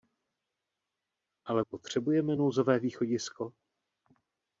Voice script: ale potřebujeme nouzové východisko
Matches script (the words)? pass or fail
pass